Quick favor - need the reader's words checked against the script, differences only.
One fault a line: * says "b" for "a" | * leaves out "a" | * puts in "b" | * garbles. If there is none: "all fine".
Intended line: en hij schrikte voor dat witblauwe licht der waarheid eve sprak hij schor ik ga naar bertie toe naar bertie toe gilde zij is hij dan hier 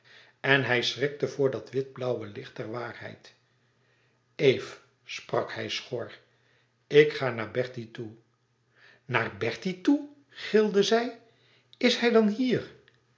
all fine